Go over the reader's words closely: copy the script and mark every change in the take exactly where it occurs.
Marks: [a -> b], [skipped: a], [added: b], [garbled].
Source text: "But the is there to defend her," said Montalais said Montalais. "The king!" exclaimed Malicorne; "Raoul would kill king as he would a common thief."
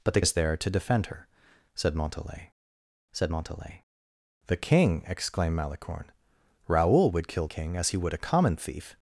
"But the is there to defend her," said Montalais said Montalais. "The king!" exclaimed Malicorne; "Raoul would kill king as he would a common thief."